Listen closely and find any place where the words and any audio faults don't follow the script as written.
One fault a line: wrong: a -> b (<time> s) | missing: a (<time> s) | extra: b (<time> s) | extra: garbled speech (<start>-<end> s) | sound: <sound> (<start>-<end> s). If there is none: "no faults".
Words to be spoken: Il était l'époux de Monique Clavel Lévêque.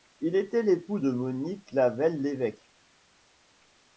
no faults